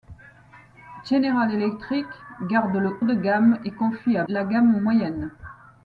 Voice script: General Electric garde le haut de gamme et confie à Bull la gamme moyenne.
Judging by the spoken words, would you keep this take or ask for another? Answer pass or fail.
fail